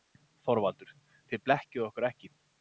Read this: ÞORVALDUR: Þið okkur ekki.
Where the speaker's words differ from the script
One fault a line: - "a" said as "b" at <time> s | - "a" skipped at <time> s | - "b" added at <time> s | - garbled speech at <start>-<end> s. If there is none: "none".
- "blekkið" added at 1.5 s